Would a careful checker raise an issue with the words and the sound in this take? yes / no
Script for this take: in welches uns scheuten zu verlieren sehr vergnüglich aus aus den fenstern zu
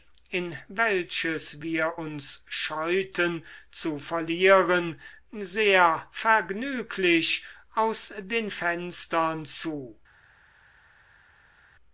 yes